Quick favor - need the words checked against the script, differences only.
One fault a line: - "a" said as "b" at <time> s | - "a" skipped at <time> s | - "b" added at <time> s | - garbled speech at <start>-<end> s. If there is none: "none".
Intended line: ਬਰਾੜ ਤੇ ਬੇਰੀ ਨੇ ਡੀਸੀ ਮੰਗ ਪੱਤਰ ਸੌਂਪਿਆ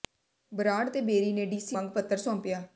none